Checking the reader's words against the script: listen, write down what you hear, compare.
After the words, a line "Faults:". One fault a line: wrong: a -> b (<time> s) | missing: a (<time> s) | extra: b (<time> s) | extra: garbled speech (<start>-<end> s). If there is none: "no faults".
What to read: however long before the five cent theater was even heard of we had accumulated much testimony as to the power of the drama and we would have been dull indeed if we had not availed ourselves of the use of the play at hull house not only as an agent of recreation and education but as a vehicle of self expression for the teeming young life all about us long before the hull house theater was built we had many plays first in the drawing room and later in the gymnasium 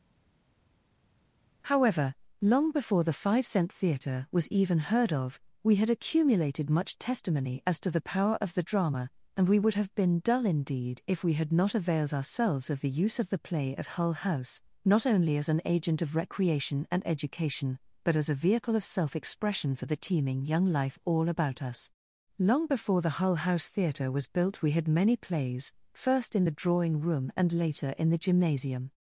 however long before the five cent theater was even heard of we had accumulated much testimony as to the power of the drama and we would have been dull indeed if we had not availed ourselves of the use of the play at hull house not only as an agent of recreation and education but as a vehicle of self expression for the teeming young life all about us long before the hull house theater was built we had many plays first in the drawing room and later in the gymnasium
Faults:
no faults